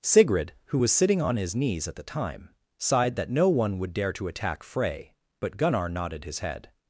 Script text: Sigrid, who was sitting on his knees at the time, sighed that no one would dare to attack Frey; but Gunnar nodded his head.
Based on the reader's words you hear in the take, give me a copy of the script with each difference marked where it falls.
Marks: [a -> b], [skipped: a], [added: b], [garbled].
Sigrid, who was sitting on his knees at the time, sighed that no one would dare to attack Frey; but Gunnar nodded his head.